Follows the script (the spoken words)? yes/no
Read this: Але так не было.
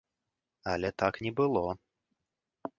yes